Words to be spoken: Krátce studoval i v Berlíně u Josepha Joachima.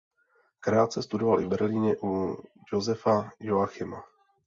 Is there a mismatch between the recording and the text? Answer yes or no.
no